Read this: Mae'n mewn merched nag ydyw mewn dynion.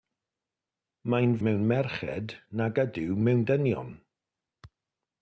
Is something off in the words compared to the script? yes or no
no